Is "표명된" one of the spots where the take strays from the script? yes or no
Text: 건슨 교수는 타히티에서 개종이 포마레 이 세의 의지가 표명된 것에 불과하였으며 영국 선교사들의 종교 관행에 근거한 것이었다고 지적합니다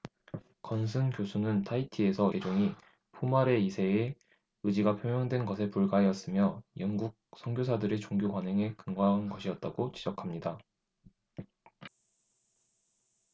no